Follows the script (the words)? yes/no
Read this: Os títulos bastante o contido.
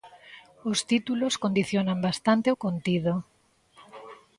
no